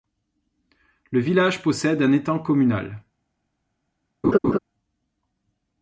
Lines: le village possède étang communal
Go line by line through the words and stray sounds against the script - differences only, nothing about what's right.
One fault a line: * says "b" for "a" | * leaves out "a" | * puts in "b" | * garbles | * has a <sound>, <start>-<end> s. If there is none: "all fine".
* puts in "un"
* has a laugh, 4.2-4.6 s